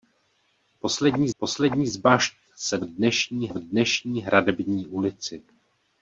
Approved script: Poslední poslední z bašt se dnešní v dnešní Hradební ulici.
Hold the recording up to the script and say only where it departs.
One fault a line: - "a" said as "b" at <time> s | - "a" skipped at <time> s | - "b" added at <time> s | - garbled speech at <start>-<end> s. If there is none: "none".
none